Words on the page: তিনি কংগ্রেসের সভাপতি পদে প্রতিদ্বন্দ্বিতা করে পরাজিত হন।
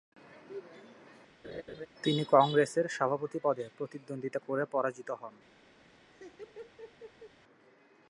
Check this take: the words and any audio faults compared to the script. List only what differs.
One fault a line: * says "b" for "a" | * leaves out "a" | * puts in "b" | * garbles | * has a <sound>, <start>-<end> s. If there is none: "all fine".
* has a laugh, 1.4-1.9 s
* has a laugh, 5.8-7.4 s